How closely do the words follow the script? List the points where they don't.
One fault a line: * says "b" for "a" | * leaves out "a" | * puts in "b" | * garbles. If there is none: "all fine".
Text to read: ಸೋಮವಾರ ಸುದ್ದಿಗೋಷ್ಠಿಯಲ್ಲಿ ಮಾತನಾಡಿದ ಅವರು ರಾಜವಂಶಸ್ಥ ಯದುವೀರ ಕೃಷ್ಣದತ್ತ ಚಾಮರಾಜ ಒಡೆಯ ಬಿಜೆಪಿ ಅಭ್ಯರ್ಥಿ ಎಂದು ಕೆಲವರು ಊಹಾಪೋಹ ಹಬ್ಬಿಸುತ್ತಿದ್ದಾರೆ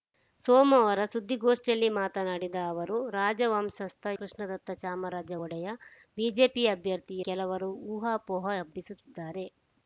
* leaves out "ಯದುವೀರ"
* leaves out "ಎಂದು"